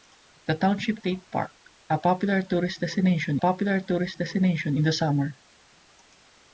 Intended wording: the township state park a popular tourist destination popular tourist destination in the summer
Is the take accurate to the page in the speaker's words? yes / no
yes